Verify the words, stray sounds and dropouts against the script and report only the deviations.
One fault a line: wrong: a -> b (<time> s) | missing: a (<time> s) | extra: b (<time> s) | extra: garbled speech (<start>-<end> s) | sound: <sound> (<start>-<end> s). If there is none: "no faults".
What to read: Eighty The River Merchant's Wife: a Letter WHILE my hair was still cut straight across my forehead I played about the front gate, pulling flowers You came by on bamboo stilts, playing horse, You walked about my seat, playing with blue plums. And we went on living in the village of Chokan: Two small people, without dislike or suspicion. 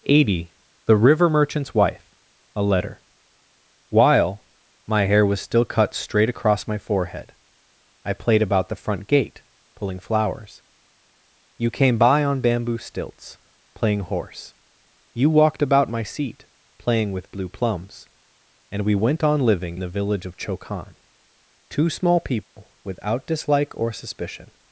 missing: in (19.8 s)
sound: dropout (22.4-22.6 s)